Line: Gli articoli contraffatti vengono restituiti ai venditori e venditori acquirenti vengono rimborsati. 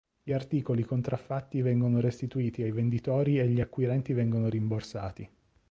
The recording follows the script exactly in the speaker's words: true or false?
false